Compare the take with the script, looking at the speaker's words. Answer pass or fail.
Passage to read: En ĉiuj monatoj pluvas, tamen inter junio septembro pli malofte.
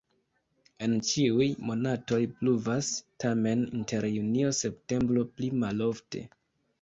pass